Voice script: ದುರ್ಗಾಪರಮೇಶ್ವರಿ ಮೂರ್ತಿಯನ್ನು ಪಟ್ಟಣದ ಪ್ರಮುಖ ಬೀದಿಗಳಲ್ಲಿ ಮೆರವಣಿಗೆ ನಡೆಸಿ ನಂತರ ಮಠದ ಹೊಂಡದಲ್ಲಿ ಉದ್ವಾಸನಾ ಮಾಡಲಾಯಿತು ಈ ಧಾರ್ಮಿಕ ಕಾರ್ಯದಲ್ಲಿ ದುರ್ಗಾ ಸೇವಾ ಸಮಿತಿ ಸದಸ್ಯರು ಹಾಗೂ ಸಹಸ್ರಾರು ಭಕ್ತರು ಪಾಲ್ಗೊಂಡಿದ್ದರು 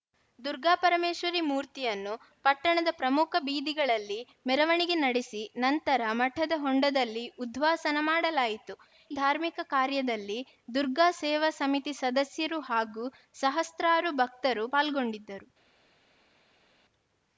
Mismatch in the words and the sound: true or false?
true